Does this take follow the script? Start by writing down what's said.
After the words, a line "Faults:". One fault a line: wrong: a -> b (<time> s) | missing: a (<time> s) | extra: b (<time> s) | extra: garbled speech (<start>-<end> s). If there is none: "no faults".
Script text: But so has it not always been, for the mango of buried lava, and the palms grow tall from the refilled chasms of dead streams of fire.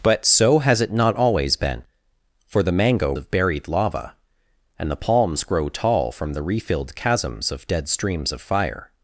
But so has it not always been, for the mango of buried lava, and the palms grow tall from the refilled chasms of dead streams of fire.
Faults:
no faults